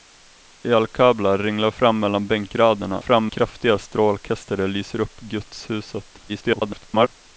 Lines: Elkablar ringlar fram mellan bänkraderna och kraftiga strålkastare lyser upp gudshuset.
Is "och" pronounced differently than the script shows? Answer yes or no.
yes